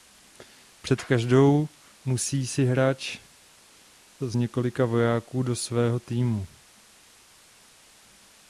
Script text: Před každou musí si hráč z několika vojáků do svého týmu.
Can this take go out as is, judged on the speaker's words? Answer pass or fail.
pass